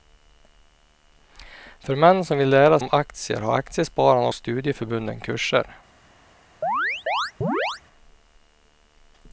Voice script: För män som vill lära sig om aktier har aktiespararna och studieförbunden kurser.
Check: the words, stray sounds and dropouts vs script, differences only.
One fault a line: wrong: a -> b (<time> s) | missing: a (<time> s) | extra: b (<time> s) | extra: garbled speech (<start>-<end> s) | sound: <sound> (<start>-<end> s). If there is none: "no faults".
missing: sig (2.8 s)
missing: och (4.3 s)
sound: chirp (6.6-7.8 s)